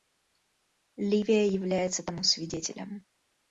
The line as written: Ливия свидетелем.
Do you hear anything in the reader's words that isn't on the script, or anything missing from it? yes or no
yes